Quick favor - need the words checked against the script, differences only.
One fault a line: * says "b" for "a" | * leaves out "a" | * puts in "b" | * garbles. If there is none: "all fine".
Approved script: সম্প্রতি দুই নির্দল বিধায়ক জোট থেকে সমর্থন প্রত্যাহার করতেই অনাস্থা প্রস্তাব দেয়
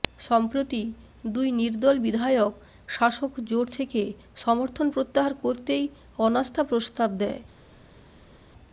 * puts in "শাসক"